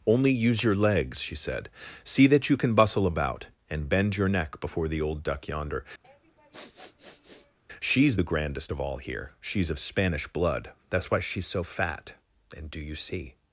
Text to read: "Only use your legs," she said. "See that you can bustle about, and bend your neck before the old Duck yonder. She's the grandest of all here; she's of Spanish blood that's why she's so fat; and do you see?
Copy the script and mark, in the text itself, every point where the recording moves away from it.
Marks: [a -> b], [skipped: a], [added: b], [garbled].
"Only use your legs," she said. "See that you can bustle about, and bend your neck before the old Duck yonder. She's the grandest of all here; she's of Spanish blood that's why she's so fat; and do you see?